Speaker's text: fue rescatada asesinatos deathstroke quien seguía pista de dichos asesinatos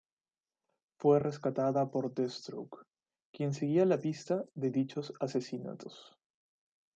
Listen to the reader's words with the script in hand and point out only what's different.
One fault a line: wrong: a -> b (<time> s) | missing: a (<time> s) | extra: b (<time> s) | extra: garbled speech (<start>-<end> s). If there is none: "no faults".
wrong: asesinatos -> por (1.9 s)
extra: la (3.9 s)